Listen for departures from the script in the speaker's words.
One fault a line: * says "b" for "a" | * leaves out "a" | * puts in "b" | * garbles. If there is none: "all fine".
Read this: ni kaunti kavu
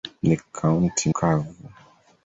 all fine